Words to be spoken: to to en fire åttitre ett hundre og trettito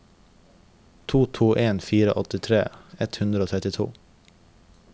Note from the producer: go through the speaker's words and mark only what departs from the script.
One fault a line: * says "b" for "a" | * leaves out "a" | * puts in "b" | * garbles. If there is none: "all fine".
all fine